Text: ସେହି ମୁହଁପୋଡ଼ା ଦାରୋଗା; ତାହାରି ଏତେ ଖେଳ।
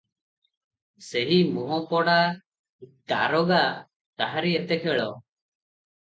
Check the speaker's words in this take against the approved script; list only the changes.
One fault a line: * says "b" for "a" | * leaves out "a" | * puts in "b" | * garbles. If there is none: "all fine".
all fine